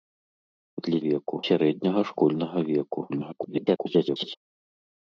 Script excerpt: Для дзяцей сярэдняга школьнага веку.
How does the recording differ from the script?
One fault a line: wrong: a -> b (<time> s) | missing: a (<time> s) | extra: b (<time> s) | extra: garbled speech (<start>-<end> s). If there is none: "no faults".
wrong: дзяцей -> веку (1.1 s)
extra: garbled speech (3.1-4.4 s)